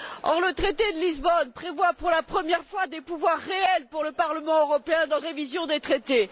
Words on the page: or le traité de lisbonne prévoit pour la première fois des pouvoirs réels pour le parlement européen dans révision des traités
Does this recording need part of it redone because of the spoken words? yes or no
no